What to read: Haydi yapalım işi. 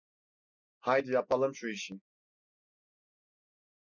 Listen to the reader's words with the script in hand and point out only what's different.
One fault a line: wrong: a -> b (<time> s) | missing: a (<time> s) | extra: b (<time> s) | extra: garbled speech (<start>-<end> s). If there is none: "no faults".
extra: şu (1.6 s)